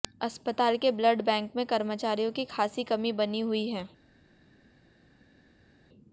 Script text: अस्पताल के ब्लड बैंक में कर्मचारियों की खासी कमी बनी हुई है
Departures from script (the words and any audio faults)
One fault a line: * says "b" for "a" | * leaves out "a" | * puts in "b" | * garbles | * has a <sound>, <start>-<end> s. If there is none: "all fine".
all fine